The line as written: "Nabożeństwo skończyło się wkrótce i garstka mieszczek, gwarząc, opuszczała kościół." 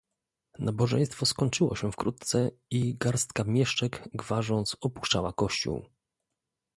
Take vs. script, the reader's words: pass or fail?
pass